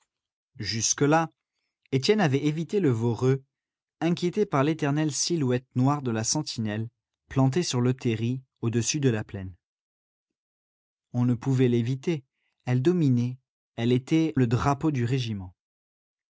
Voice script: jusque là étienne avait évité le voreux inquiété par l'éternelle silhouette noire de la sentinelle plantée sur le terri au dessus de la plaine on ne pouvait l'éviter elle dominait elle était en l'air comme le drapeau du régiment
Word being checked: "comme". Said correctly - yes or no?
no